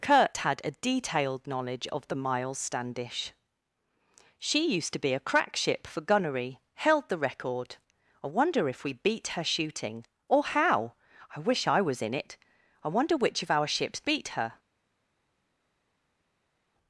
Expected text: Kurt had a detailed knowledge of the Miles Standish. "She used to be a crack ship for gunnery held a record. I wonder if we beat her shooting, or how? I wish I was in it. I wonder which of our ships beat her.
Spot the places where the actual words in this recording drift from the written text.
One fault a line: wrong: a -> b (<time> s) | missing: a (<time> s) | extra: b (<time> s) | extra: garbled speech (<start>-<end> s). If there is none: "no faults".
wrong: a -> the (7.1 s)